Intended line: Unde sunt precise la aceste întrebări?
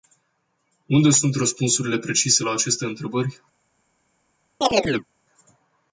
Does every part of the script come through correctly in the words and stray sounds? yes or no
no